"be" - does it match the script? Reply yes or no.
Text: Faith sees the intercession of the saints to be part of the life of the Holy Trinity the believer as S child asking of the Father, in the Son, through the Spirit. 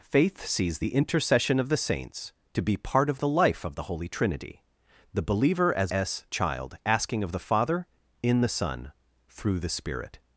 yes